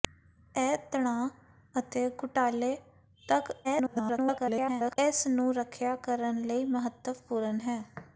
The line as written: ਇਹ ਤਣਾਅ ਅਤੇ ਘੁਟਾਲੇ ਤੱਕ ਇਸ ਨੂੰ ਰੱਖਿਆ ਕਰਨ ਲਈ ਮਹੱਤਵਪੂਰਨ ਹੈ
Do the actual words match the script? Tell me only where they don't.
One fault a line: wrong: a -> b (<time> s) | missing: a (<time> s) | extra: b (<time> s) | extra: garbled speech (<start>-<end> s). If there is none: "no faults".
extra: garbled speech (3.6-5.0 s)